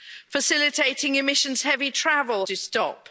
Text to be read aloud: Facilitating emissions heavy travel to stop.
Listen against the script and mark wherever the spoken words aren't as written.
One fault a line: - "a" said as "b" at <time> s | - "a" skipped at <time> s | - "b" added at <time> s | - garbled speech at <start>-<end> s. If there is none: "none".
none